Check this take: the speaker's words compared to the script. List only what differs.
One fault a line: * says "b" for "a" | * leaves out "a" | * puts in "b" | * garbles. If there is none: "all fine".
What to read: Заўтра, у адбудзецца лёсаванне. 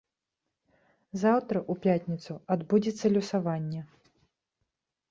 * puts in "пятніцу"